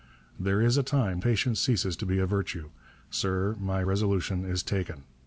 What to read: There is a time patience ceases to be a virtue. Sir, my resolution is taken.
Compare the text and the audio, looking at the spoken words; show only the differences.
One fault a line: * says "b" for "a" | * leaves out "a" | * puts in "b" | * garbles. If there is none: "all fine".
all fine